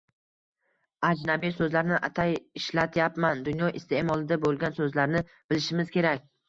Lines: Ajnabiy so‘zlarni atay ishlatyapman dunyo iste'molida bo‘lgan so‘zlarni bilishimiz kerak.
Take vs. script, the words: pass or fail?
pass